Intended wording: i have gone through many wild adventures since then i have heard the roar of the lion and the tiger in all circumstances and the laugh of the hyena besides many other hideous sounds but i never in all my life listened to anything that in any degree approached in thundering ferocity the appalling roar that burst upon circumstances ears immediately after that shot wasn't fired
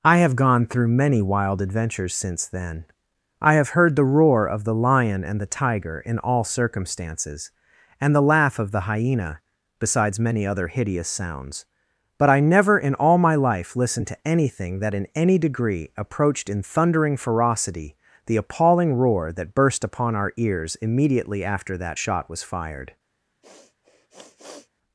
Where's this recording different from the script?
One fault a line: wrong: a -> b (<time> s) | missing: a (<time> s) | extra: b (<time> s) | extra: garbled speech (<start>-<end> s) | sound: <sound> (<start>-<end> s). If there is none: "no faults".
wrong: circumstances -> our (20.2 s)
wrong: wasn't -> was (22.3 s)
sound: sniff (23.4-24.7 s)